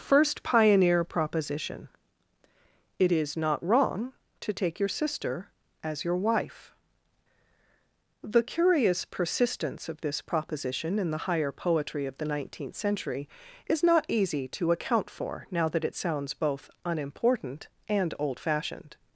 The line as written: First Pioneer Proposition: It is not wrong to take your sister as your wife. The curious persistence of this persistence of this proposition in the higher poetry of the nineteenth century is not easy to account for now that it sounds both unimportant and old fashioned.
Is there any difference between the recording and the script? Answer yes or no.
yes